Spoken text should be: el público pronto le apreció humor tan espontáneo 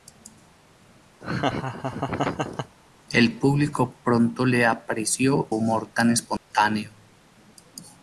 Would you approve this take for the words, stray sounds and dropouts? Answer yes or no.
no